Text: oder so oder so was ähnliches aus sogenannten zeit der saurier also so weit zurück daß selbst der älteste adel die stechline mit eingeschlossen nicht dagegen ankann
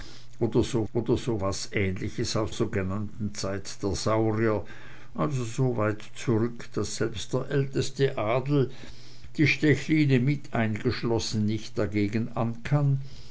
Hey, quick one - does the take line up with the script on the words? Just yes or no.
yes